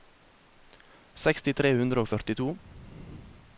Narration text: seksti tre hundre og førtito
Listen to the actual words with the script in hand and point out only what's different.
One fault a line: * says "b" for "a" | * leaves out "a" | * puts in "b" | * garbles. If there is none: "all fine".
all fine